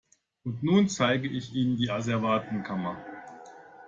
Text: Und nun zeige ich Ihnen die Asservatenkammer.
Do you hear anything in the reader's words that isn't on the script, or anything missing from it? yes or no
no